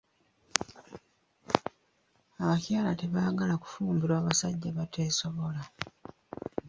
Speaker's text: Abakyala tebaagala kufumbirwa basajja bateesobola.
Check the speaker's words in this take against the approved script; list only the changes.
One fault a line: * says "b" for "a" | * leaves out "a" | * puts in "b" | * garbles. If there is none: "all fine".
all fine